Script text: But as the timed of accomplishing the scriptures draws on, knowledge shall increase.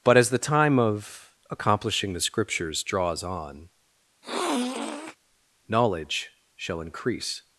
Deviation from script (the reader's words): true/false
true